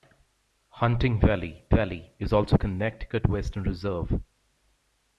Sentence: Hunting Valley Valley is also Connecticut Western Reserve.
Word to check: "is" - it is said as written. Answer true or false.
true